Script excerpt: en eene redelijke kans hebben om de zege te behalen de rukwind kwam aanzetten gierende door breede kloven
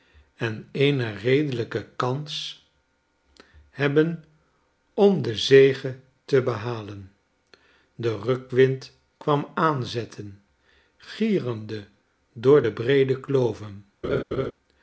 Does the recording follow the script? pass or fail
fail